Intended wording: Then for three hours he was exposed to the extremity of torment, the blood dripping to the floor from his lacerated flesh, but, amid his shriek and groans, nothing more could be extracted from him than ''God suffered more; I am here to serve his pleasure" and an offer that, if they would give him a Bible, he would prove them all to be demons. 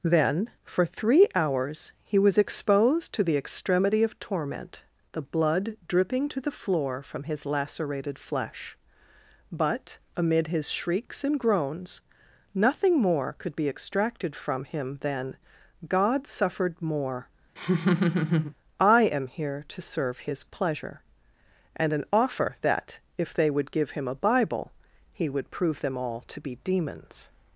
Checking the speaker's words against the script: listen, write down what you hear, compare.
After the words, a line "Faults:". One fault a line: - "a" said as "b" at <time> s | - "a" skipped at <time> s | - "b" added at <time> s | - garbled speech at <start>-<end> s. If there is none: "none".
Then for three hours he was exposed to the extremity of torment, the blood dripping to the floor from his lacerated flesh, but, amid his shrieks and groans, nothing more could be extracted from him than ''God suffered more; I am here to serve his pleasure" and an offer that, if they would give him a Bible, he would prove them all to be demons.
Faults:
- "shriek" said as "shrieks" at 10.7 s